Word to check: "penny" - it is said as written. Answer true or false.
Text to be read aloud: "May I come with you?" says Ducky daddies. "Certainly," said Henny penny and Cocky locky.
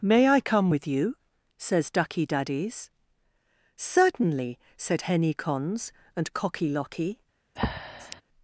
false